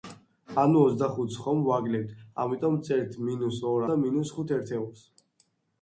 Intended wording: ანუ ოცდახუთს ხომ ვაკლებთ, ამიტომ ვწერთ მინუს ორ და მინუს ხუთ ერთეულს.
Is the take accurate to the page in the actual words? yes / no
yes